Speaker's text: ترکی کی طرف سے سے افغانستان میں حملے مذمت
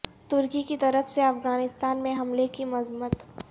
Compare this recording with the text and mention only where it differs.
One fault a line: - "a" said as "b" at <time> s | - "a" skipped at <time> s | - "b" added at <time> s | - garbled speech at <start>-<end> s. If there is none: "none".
- "سے" skipped at 1.2 s
- "کی" added at 2.5 s